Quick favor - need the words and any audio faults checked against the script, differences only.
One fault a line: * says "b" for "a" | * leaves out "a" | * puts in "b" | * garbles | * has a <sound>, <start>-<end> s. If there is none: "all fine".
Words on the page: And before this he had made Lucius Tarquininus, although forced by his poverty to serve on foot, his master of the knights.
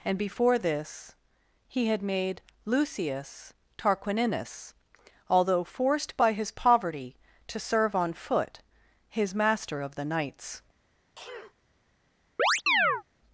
* has a sneeze, 11.1-11.5 s
* has a chirp, 12.4-13.0 s